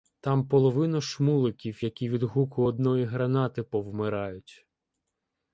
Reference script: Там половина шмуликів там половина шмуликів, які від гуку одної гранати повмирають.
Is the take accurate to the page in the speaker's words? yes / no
no